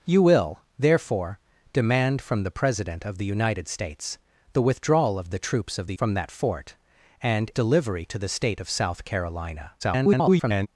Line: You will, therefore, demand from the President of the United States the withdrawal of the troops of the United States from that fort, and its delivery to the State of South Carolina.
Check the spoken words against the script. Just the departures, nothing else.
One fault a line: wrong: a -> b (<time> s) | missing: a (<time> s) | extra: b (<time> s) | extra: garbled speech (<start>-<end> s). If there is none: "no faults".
missing: United States (6.0 s)
missing: its (7.5 s)
extra: garbled speech (9.8-10.7 s)